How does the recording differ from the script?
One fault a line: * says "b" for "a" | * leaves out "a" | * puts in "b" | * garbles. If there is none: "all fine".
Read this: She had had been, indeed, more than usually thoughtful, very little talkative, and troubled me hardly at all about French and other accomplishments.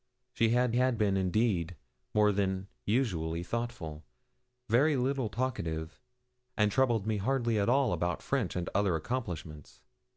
all fine